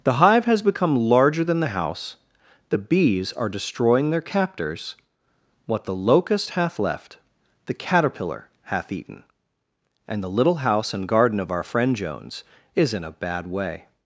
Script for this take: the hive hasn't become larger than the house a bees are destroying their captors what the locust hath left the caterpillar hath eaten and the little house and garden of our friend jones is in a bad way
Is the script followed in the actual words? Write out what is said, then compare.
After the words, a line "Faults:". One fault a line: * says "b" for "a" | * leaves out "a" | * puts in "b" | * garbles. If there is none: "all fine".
the hive has become larger than the house the bees are destroying their captors what the locust hath left the caterpillar hath eaten and the little house and garden of our friend jones is in a bad way
Faults:
* says "has" for "hasn't"
* says "the" for "a"